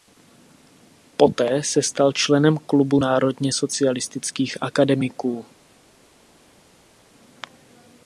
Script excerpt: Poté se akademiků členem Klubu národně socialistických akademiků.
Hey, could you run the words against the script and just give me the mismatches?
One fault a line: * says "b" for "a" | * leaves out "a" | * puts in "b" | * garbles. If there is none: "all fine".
* says "stal" for "akademiků"